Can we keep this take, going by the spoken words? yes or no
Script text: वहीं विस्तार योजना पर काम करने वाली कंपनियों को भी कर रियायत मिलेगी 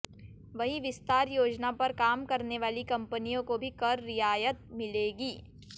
yes